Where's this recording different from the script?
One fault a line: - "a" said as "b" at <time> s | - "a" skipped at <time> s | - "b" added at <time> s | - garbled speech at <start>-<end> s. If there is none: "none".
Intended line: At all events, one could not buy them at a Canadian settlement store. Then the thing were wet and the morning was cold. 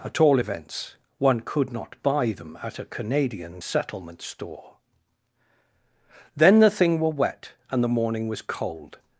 none